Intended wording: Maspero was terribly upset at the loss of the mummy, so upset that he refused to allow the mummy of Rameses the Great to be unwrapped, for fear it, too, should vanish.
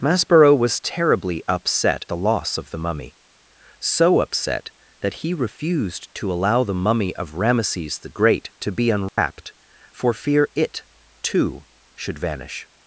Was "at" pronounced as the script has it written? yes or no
no